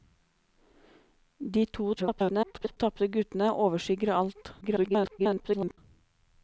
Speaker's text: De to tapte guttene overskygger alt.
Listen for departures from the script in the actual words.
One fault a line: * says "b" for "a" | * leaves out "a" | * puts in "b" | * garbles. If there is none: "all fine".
* garbles
* garbles